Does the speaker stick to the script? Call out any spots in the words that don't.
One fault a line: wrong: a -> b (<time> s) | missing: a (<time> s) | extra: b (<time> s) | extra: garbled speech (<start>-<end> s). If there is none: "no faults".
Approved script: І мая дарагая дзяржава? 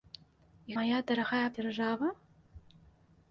no faults